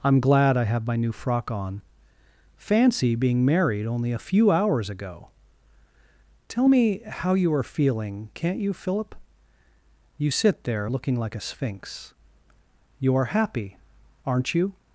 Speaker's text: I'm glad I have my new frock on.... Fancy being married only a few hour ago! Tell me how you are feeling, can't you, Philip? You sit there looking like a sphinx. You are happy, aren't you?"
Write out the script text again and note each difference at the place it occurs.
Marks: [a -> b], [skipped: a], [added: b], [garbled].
I'm glad I have my new frock on.... Fancy being married only a few [hour -> hours] ago! Tell me how you are feeling, can't you, Philip? You sit there looking like a sphinx. You are happy, aren't you?"